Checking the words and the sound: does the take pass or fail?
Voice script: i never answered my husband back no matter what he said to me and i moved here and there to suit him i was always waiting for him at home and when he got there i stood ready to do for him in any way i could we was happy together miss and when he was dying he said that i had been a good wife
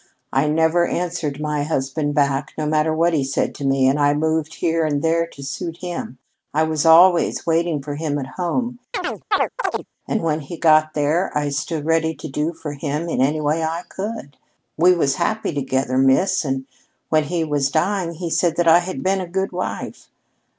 fail